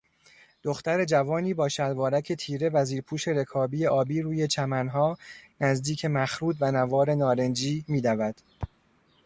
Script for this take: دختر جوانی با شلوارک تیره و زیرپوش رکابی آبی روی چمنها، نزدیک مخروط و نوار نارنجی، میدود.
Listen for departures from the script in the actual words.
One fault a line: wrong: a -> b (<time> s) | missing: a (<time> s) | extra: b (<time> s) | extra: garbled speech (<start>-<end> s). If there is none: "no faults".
no faults